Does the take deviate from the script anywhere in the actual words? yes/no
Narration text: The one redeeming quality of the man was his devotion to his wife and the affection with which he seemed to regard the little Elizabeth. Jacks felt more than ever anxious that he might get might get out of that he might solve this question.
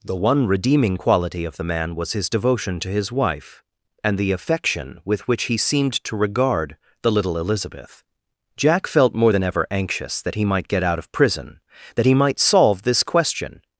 yes